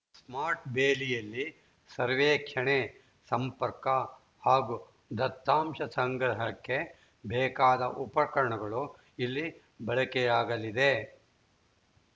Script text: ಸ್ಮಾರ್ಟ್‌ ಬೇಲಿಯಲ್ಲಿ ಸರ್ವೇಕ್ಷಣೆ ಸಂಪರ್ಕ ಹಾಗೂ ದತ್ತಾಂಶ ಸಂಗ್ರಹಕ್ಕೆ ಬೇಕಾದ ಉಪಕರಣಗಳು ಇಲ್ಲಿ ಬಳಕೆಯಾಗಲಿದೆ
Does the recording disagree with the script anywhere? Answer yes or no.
no